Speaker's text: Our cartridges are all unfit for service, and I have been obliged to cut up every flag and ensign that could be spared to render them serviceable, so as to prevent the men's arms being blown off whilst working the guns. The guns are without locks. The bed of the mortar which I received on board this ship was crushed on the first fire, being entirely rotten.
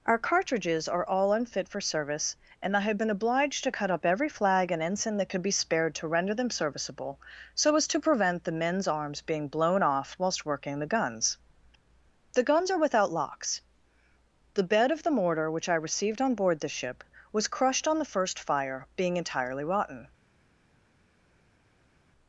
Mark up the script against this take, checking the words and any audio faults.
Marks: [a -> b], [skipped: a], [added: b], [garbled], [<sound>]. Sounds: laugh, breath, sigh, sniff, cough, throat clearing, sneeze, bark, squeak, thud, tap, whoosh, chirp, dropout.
Our cartridges are all unfit for service, and I have been obliged to cut up every flag and ensign that could be spared to render them serviceable, so as to prevent the men's arms being blown off whilst working the guns. The guns are without locks. The bed of the mortar which I received on board [this -> the] ship was crushed on the first fire, being entirely rotten.